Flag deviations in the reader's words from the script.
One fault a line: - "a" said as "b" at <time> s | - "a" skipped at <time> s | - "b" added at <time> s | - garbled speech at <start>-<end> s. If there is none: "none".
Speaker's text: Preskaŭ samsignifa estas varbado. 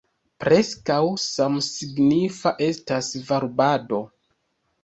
none